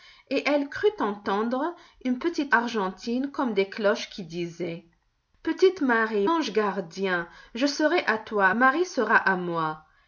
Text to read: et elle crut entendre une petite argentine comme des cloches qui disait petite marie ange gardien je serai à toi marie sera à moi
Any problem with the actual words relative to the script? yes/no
no